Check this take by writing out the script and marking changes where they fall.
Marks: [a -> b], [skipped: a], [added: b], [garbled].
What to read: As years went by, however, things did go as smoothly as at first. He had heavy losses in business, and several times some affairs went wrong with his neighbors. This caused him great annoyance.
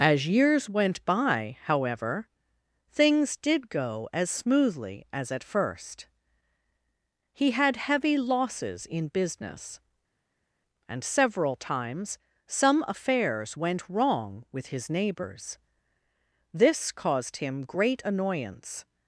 As years went by, however, things did go as smoothly as at first. He had heavy losses in business, and several times some affairs went wrong with his neighbors. This caused him great annoyance.